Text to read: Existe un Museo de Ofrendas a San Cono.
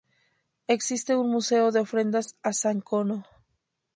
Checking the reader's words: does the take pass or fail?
pass